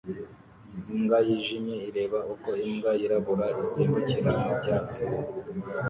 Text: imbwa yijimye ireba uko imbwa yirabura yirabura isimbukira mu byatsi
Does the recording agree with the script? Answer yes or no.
no